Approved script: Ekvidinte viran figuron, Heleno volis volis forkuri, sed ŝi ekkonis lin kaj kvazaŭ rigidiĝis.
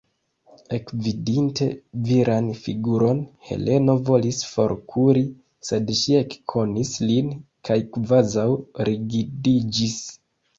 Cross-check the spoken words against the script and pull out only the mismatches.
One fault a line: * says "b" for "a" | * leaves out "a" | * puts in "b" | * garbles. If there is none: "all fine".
* leaves out "volis"